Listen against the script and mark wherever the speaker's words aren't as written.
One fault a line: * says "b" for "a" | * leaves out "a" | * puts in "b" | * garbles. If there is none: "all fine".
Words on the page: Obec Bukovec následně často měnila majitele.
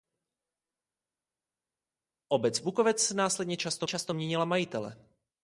* puts in "často"